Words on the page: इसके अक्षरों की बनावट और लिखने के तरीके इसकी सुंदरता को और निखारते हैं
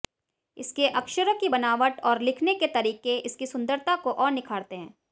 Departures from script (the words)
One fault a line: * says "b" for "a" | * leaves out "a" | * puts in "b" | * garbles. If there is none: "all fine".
all fine